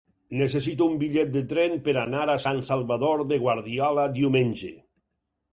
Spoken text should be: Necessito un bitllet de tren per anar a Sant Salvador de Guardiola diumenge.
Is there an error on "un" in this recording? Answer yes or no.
no